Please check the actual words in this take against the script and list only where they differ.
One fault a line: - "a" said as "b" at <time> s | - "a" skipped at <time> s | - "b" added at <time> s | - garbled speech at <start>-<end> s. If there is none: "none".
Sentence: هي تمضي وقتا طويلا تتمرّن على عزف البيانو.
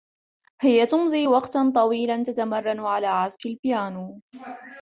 none